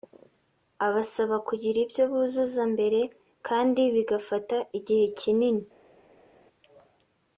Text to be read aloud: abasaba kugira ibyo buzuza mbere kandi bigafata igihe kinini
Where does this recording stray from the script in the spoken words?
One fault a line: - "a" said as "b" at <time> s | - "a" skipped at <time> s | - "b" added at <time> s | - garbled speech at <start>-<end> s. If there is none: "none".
none